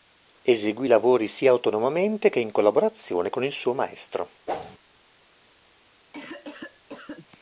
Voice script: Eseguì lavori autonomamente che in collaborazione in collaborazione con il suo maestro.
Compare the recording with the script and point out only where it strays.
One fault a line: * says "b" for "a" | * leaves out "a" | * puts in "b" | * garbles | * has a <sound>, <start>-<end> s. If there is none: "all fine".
* puts in "sia"
* leaves out "in collaborazione"
* has a whoosh, 4.5-4.8 s
* has a cough, 6.1-7.3 s